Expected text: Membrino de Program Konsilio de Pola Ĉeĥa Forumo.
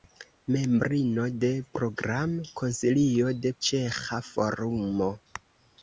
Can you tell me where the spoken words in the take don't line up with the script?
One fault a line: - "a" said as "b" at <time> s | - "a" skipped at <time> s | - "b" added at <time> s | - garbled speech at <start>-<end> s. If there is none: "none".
- "Pola" skipped at 3.5 s